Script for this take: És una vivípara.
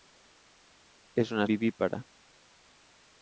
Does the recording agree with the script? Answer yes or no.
yes